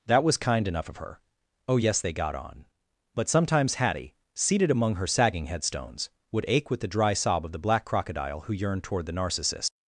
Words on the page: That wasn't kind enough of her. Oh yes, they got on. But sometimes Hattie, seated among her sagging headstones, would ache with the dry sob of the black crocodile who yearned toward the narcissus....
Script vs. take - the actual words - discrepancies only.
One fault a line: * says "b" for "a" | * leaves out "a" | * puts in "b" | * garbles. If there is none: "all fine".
* says "was" for "wasn't"